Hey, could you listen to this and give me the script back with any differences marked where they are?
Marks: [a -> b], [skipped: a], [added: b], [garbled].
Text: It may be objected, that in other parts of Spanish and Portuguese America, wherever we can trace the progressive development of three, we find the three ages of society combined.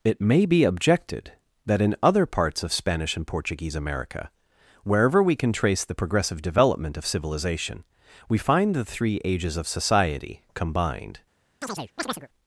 It may be objected, that in other parts of Spanish and Portuguese America, wherever we can trace the progressive development of [three, -> civilization] we find the three ages of society combined.